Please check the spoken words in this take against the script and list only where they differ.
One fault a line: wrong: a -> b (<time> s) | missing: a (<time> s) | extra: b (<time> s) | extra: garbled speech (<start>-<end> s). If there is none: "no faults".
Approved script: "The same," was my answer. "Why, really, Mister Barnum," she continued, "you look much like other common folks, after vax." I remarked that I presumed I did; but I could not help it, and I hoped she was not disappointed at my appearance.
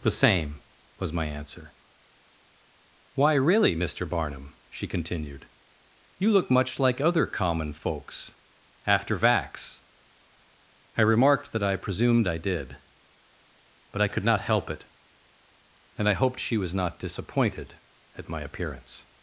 no faults